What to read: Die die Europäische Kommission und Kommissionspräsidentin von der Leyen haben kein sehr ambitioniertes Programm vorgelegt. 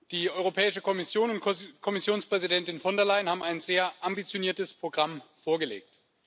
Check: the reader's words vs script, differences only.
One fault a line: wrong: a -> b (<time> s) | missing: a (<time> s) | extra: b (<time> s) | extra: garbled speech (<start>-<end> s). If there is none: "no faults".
missing: die (0.3 s)
wrong: kein -> ein (3.4 s)